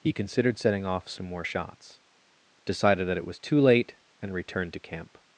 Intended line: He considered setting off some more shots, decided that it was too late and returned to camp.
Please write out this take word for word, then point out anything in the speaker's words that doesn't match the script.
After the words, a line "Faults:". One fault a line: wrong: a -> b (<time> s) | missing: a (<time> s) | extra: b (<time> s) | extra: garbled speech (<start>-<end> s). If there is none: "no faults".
He considered setting off some more shots, decided that it was too late and returned to camp.
Faults:
no faults